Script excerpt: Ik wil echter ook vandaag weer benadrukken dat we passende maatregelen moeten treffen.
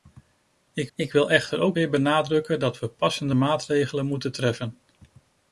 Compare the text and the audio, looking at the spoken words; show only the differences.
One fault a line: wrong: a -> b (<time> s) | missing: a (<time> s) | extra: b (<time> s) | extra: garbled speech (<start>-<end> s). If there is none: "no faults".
extra: ik (1.0 s)
missing: vandaag (1.8 s)